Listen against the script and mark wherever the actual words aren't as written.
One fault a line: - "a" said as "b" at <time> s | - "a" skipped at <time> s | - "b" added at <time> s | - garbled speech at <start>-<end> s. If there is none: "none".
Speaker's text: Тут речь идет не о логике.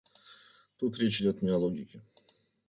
none